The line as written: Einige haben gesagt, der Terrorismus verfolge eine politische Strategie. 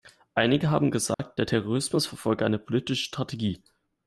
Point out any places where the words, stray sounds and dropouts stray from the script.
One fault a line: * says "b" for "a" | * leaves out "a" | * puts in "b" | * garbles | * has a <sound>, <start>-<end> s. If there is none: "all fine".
* has a dropout, 1.1-1.2 s